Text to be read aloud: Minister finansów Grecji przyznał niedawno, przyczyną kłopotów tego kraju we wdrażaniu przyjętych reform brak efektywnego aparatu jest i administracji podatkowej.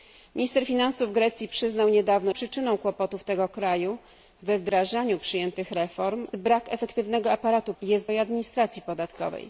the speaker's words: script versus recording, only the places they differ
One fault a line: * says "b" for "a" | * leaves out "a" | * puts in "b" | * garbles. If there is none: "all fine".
all fine